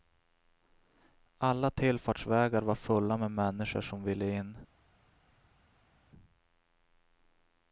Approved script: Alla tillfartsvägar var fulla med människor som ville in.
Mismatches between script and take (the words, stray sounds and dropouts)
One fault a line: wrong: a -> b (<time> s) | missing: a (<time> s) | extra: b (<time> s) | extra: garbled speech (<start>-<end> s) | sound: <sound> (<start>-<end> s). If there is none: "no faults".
no faults